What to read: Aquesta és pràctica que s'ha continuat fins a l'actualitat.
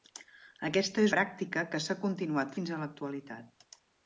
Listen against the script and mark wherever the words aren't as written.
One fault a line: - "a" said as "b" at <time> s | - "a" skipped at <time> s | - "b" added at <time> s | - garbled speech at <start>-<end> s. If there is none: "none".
none